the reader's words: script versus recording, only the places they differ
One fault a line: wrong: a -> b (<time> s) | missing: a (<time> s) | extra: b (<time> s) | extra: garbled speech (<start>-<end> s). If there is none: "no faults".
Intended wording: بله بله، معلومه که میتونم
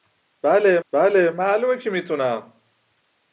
no faults